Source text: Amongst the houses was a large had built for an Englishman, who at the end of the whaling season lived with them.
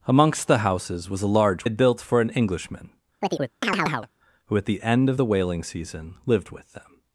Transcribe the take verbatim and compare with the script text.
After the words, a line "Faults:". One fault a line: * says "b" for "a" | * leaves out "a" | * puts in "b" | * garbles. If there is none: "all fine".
Amongst the houses was a large had built for an Englishman, who at the end of the whaling season lived with them.
Faults:
all fine